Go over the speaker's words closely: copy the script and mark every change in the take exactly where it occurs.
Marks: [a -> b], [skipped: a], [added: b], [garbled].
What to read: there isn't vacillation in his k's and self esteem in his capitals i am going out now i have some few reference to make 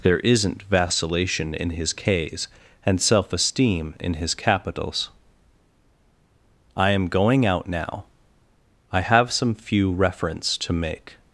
there isn't vacillation in his k's and self esteem in his capitals i am going out now i have some few reference to make